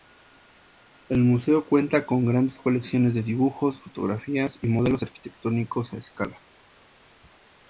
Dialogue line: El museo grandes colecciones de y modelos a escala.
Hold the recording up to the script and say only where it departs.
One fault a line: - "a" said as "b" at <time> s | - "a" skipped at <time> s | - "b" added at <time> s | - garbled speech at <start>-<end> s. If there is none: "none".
- "cuenta con" added at 1.7 s
- "dibujos fotografías" added at 3.2 s
- "arquitectónicos" added at 5.0 s